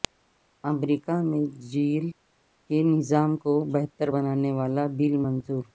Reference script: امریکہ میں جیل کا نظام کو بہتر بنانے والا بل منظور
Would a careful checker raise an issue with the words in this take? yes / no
yes